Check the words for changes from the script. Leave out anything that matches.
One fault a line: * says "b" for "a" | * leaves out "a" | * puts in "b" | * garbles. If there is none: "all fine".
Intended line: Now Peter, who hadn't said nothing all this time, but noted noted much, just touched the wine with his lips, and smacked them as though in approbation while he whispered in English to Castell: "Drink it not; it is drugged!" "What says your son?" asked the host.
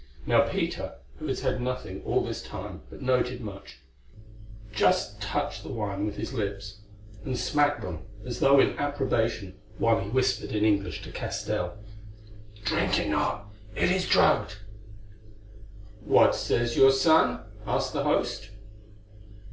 * says "had" for "hadn't"
* leaves out "noted"